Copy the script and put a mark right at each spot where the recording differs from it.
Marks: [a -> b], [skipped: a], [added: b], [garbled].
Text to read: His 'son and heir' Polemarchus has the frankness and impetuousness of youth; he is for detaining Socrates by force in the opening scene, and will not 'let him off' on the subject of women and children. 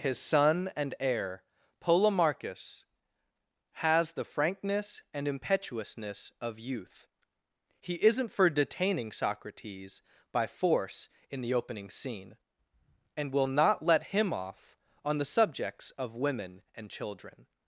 His 'son and heir' Polemarchus has the frankness and impetuousness of youth; he [is -> isn't] for detaining Socrates by force in the opening scene, and will not 'let him off' on the [subject -> subjects] of women and children.